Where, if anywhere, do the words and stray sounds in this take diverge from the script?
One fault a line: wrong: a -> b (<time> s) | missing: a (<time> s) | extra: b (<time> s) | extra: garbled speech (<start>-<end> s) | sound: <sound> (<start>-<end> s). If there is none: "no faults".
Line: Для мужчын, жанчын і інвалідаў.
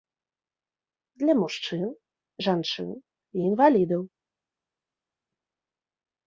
no faults